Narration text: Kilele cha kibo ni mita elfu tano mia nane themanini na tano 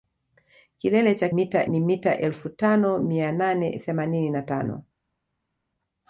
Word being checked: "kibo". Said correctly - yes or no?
no